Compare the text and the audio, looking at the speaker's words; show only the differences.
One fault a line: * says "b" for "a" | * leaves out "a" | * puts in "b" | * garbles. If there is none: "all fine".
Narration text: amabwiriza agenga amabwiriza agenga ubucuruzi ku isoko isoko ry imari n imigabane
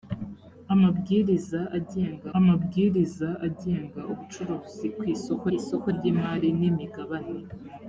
all fine